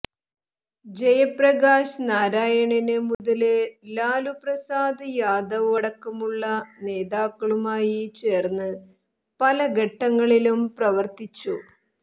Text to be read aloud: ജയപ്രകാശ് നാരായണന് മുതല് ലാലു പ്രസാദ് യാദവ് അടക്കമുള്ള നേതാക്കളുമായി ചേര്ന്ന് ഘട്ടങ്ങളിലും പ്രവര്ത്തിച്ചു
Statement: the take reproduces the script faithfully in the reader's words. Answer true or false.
false